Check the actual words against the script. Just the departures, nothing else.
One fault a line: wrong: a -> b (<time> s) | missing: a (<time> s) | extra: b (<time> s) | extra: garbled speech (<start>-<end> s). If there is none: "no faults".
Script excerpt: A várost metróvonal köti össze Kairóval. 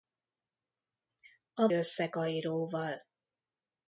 missing: várost metróvonal köti (1.7 s)